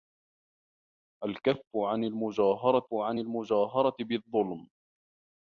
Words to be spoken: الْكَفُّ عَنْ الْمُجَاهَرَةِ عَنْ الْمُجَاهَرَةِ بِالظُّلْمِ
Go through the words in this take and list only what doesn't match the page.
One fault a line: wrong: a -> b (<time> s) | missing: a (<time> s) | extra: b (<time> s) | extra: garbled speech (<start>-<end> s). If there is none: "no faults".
no faults